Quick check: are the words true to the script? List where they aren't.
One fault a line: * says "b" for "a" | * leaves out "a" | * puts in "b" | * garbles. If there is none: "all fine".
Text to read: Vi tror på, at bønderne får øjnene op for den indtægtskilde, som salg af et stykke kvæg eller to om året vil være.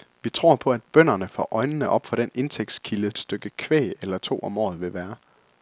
* leaves out "som salg af"